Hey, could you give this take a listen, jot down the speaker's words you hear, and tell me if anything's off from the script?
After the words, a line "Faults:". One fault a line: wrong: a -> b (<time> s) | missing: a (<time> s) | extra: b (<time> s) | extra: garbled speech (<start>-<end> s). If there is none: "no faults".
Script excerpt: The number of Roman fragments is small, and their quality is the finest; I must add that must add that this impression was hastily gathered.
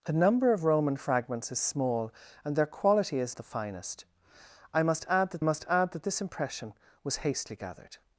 The number of Roman fragments is small, and their quality is the finest; I must add that must add that this impression was hastily gathered.
Faults:
no faults